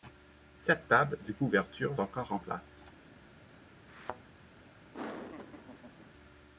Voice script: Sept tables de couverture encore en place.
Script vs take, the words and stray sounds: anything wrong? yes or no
yes